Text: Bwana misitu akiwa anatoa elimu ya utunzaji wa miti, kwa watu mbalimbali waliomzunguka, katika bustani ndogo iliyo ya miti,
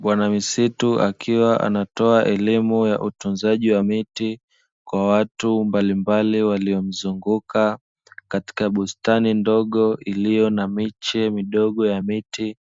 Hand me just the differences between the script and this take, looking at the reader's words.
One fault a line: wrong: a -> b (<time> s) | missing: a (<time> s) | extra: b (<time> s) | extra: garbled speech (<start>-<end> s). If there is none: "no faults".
extra: na miche midogo (10.5 s)